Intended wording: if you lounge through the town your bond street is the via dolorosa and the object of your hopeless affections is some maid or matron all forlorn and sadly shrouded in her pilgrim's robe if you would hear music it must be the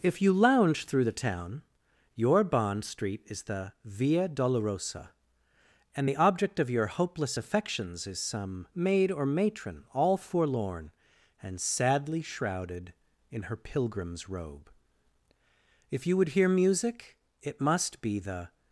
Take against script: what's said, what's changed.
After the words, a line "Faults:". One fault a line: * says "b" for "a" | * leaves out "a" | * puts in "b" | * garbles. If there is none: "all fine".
if you lounge through the town your bond street is the via dolorosa and the object of your hopeless affections is some maid or matron all forlorn and sadly shrouded in her pilgrim's robe if you would hear music it must be the
Faults:
all fine